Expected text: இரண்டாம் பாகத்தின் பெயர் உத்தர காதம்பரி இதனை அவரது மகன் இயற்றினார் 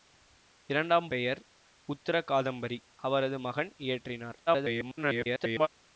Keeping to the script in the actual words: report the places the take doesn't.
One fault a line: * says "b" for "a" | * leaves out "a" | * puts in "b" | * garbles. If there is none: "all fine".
* leaves out "பாகத்தின்"
* leaves out "இதனை"
* garbles